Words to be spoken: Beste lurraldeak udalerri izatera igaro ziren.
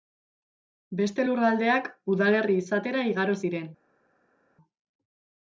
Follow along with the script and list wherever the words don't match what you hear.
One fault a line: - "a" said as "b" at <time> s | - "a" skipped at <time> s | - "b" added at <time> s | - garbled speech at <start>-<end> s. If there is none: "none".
none